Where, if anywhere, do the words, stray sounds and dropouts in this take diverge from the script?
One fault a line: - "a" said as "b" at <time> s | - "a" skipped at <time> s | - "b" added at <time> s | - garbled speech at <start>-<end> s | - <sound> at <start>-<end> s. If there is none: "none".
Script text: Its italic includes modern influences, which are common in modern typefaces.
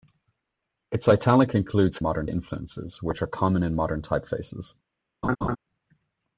- laugh at 5.2-5.6 s